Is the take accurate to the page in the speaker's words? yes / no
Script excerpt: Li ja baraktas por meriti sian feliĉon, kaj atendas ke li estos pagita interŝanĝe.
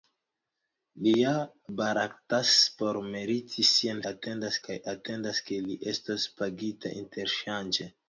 no